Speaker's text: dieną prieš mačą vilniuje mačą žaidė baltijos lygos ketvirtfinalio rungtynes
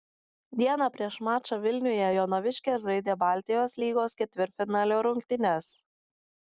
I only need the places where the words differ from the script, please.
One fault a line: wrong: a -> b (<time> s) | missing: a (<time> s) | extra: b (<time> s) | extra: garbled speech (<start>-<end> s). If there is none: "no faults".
wrong: mačą -> jonaviškės (2.2 s)